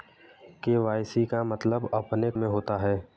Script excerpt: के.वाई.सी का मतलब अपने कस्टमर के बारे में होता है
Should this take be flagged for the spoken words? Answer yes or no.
yes